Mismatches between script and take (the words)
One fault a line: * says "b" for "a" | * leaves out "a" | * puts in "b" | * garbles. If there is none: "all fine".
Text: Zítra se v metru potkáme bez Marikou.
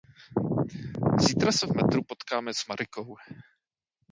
* says "s" for "bez"